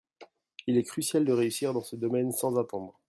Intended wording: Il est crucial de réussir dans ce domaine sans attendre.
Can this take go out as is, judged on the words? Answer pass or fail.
pass